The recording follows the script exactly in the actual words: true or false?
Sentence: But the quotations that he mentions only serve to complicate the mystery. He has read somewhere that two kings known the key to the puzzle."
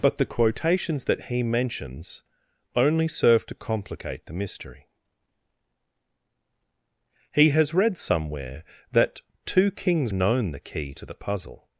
true